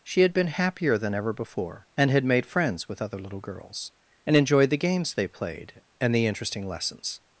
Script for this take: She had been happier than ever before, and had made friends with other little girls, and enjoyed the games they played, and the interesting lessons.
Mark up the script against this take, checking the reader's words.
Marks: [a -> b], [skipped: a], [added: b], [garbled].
She had been happier than ever before, and had made friends with other little girls, and enjoyed the games they played, and the interesting lessons.